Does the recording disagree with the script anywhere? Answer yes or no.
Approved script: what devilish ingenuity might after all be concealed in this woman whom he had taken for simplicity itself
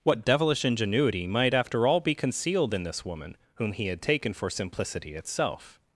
no